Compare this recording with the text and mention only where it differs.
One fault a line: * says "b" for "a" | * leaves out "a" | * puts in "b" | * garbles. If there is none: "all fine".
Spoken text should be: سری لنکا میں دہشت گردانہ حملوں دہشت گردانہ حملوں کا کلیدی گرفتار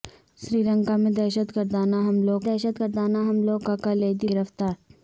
all fine